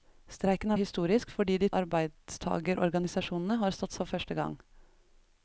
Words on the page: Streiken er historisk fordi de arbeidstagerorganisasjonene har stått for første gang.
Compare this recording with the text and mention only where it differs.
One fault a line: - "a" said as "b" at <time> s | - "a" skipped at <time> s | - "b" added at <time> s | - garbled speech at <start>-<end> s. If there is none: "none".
none